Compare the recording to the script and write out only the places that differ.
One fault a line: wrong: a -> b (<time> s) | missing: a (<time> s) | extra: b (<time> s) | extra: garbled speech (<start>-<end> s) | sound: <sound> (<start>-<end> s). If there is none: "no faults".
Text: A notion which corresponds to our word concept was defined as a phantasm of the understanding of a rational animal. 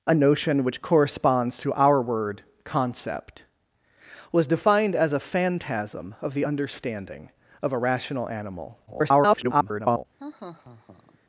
extra: garbled speech (8.9-10.1 s)
sound: laugh (10.2-11.2 s)